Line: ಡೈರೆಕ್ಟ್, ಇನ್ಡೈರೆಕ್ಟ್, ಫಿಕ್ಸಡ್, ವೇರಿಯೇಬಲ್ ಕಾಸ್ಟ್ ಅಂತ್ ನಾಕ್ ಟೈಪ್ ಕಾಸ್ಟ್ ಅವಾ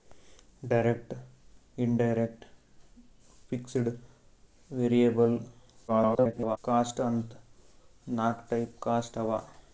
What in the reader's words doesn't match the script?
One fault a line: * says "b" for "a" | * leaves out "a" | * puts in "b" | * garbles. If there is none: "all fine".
* garbles